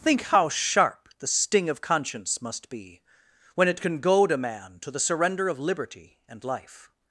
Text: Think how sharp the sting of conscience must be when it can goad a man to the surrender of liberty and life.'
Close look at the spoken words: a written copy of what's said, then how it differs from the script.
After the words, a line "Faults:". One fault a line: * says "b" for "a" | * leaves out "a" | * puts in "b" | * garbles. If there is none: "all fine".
Think how sharp the sting of conscience must be when it can goad a man to the surrender of liberty and life.'
Faults:
all fine